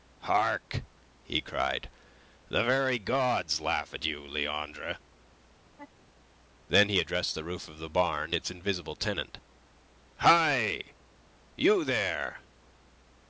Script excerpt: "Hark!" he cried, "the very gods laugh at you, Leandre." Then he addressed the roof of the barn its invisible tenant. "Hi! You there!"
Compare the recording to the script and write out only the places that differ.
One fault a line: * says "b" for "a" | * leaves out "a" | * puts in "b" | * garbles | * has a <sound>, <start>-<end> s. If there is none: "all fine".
* has a laugh, 5.6-6.1 s